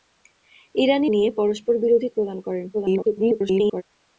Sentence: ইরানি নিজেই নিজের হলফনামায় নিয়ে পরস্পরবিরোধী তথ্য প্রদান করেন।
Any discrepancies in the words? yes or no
yes